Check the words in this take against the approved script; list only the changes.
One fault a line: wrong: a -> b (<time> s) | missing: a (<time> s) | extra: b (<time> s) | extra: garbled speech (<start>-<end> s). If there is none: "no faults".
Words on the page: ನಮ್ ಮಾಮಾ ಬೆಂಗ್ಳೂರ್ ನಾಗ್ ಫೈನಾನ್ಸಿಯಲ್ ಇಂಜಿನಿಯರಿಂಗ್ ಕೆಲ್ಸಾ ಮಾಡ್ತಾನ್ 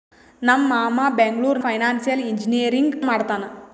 missing: ನಾಗ್ (1.6 s)
missing: ಕೆಲ್ಸಾ (3.0 s)